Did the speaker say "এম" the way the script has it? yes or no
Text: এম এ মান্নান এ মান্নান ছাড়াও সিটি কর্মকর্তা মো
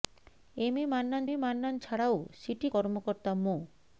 yes